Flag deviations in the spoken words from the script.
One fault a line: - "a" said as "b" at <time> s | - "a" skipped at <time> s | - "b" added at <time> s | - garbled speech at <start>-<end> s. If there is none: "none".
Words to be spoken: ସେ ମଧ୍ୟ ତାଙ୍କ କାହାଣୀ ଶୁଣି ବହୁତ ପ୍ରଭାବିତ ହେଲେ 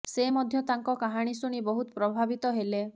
none